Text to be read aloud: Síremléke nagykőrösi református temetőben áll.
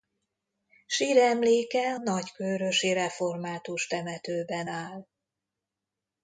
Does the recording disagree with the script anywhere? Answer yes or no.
no